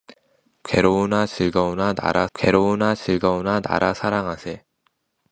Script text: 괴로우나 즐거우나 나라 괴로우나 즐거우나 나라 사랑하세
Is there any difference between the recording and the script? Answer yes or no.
no